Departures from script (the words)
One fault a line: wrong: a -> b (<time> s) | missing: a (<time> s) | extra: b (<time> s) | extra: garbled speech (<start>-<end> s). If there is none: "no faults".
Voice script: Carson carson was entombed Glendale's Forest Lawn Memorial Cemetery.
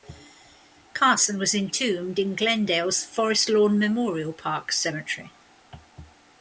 missing: carson (1.4 s)
extra: in (2.2 s)
extra: Park (4.3 s)